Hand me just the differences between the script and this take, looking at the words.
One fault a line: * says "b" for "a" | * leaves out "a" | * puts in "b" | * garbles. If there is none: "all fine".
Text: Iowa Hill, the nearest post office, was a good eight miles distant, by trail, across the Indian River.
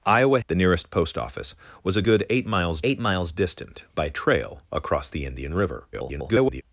* leaves out "Hill"
* puts in "eight miles"
* garbles